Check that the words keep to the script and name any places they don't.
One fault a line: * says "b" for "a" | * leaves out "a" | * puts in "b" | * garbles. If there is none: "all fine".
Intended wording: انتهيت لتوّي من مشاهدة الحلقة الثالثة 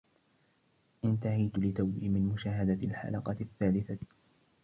all fine